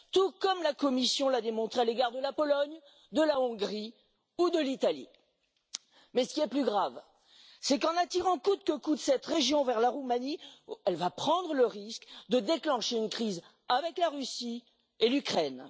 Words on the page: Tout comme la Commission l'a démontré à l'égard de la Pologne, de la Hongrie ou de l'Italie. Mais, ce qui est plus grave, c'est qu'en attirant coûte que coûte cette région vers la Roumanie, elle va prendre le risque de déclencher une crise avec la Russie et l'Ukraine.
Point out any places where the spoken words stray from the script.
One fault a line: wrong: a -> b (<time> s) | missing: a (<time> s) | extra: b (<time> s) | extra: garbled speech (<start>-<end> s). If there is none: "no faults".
no faults